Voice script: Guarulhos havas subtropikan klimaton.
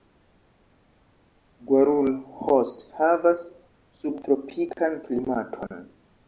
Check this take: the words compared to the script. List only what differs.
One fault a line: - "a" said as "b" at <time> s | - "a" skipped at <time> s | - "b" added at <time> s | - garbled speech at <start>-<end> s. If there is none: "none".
none